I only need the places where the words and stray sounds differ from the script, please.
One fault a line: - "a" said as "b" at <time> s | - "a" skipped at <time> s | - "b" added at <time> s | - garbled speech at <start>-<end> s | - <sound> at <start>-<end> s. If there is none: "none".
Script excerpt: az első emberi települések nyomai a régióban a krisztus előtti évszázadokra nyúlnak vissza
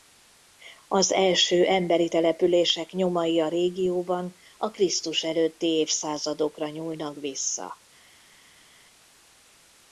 none